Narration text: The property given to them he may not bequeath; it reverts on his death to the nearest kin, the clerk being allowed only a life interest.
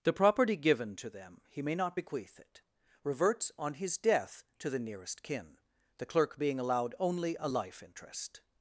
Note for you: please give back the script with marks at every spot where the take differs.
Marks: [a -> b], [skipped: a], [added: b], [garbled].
The property given to them he may not bequeath; it reverts on his death to the nearest kin, the clerk being allowed only a life interest.